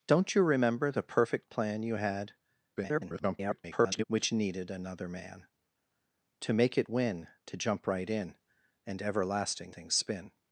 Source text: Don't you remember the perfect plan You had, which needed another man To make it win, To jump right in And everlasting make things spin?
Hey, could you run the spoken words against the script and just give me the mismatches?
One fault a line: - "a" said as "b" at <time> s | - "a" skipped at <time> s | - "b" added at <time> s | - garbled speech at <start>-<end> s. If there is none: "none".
- garbled speech at 2.8-4.0 s
- "make" skipped at 9.7 s